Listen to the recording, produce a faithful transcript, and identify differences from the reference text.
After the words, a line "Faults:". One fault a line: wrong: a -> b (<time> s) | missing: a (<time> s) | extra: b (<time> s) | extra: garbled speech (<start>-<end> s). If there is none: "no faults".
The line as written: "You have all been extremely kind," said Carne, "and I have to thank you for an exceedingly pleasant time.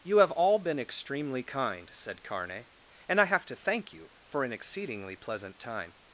"You have all been extremely kind," said Carne, "and I have to thank you for an exceedingly pleasant time.
Faults:
no faults